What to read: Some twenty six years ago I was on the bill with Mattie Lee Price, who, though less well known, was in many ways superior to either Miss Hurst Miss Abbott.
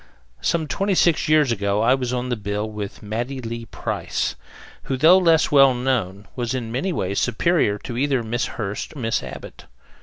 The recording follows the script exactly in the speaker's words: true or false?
true